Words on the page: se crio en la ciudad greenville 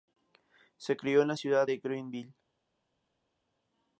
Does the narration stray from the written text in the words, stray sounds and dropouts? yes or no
yes